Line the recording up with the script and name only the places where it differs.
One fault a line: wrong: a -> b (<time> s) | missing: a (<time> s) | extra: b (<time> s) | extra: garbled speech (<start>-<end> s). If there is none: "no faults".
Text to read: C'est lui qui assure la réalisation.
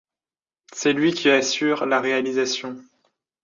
no faults